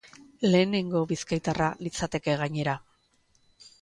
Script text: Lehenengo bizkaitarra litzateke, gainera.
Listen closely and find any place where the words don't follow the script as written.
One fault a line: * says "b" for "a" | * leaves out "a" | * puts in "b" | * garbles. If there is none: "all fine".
all fine